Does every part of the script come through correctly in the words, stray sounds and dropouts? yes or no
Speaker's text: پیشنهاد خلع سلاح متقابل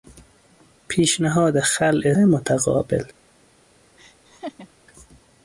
no